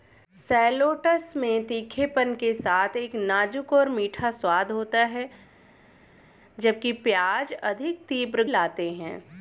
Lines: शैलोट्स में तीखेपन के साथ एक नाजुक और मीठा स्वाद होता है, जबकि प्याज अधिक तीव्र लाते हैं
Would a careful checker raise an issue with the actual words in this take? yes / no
no